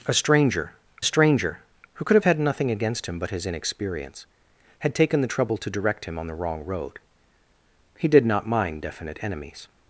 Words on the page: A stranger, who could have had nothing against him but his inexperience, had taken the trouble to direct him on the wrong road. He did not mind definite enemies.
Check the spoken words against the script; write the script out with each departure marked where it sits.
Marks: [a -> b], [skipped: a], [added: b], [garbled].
A stranger, [added: stranger] who could have had nothing against him but his inexperience, had taken the trouble to direct him on the wrong road. He did not mind definite enemies.